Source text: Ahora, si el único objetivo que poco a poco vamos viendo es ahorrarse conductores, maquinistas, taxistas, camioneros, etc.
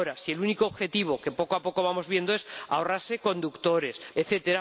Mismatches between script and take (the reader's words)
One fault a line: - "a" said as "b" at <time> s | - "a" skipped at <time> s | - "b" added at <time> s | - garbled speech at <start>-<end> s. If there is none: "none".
- "maquinistas taxistas camioneros" skipped at 4.0 s